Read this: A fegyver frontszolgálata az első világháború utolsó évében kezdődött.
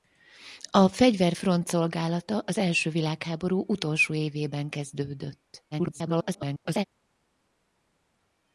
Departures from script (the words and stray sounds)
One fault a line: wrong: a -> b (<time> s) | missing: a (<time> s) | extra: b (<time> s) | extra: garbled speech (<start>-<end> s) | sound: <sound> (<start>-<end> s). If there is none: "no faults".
extra: garbled speech (5.7-6.8 s)